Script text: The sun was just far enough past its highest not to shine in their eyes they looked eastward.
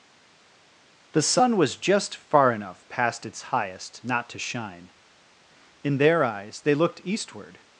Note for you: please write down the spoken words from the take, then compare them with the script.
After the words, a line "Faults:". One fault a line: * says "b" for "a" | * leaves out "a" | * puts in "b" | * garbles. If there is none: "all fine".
The sun was just far enough past its highest not to shine in their eyes they looked eastward.
Faults:
all fine